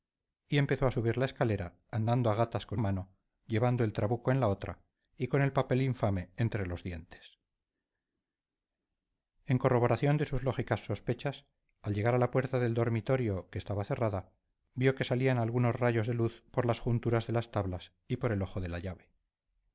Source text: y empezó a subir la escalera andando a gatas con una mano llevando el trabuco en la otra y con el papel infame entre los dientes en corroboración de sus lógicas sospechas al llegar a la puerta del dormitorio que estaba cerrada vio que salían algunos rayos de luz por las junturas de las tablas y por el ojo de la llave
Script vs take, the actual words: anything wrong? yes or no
yes